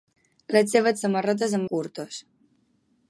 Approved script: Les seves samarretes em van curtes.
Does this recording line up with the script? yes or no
no